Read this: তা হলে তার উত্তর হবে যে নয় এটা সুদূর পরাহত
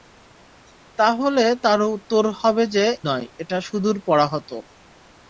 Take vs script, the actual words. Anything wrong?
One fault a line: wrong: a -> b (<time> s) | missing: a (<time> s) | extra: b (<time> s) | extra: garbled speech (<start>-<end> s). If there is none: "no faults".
no faults